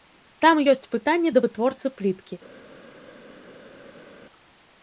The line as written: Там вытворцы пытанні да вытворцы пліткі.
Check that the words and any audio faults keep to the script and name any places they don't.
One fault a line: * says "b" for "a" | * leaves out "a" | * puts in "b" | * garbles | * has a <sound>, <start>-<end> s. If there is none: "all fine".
* says "ёсць" for "вытворцы"